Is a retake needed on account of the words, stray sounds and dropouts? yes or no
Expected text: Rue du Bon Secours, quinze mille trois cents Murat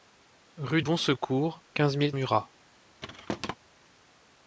yes